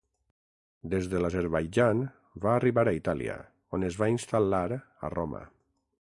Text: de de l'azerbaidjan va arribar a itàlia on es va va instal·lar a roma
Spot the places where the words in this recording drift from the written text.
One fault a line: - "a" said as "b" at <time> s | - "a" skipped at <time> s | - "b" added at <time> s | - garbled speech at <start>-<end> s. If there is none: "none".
- "de" said as "des" at 0.9 s
- "va" skipped at 4.1 s